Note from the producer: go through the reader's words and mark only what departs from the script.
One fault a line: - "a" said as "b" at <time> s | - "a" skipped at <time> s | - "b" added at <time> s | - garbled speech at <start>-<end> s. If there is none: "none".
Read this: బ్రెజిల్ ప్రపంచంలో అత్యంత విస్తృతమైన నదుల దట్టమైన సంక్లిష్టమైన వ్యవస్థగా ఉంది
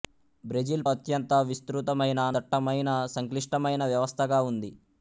- "ప్రపంచంలో" skipped at 0.8 s
- "నదుల" skipped at 2.3 s